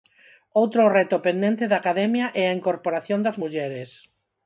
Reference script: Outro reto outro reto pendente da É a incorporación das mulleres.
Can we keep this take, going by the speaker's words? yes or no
no